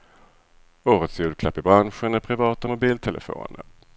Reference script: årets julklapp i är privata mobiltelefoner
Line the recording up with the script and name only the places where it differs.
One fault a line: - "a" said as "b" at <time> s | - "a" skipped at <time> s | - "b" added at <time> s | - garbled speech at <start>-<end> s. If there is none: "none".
- "branschen" added at 1.6 s